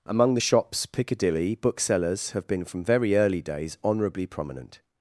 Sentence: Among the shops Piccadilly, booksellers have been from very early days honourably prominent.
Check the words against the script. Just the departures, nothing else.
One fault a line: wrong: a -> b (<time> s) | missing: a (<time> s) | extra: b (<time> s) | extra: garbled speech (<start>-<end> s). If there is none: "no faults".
no faults